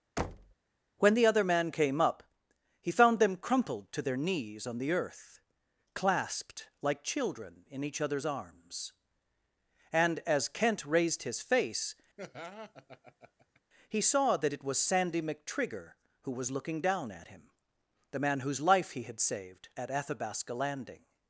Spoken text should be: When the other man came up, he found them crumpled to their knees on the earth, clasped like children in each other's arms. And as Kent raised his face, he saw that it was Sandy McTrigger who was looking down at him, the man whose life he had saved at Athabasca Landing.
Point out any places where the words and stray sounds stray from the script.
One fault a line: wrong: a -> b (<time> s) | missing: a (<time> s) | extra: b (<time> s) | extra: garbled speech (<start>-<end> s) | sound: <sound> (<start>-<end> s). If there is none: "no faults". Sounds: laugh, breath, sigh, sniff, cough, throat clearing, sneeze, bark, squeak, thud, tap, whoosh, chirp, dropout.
sound: thud (0.2-0.5 s)
sound: laugh (12.2-13.6 s)